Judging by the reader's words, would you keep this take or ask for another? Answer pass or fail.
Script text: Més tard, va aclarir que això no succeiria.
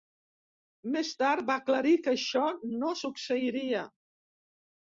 pass